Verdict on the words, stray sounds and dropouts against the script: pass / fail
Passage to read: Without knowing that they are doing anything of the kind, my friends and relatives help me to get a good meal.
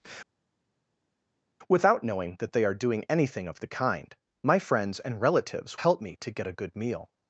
pass